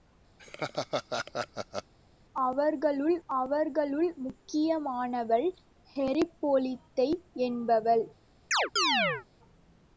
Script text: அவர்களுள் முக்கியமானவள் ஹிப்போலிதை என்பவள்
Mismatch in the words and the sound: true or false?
true